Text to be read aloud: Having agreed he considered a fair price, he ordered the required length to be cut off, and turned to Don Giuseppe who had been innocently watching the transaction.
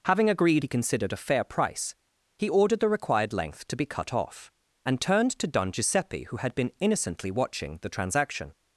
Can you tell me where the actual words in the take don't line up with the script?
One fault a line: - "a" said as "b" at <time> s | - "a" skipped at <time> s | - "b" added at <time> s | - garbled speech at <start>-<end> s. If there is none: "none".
none